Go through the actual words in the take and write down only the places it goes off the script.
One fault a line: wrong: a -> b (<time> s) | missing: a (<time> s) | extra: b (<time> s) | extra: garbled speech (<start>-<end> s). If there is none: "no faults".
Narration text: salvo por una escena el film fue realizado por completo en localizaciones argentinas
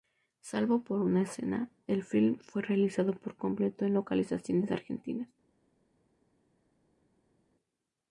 no faults